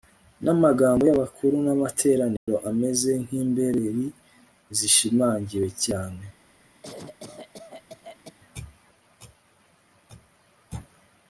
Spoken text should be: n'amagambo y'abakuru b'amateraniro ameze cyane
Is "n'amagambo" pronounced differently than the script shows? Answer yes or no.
no